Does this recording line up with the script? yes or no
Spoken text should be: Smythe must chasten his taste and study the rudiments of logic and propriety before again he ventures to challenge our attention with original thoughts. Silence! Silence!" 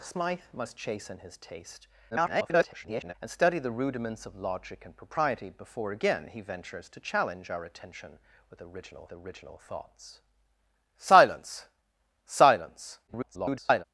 no